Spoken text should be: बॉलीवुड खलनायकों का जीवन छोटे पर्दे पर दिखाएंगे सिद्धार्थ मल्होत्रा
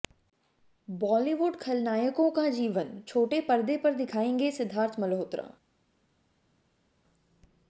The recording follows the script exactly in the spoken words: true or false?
true